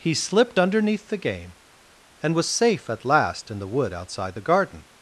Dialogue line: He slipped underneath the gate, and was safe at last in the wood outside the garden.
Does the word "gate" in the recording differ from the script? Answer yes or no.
yes